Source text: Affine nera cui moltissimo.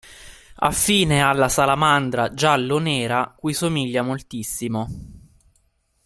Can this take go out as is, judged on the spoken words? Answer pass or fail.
fail